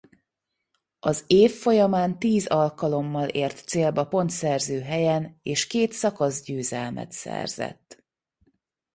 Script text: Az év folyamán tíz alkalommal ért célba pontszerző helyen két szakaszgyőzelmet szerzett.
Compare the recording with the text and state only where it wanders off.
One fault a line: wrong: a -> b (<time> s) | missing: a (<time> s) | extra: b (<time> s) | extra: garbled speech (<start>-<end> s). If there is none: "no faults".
extra: és (5.4 s)